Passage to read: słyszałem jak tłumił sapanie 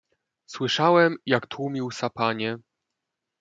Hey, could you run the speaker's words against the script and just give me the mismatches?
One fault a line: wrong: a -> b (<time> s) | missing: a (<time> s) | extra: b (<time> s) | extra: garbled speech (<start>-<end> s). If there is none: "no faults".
no faults